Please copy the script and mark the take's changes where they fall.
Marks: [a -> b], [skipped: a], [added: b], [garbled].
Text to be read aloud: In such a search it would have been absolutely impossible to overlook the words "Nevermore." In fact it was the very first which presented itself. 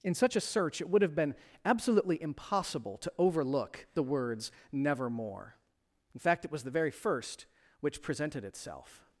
In such a search it would have been absolutely impossible to overlook the words "Nevermore." In fact it was the very first which presented itself.